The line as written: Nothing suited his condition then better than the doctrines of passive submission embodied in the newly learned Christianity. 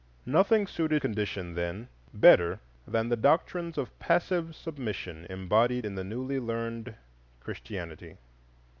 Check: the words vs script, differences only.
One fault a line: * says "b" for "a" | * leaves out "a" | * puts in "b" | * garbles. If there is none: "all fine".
* leaves out "his"